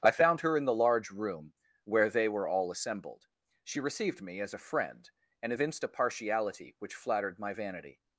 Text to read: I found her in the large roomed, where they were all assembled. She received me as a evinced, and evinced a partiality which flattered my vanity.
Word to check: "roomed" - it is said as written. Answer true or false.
false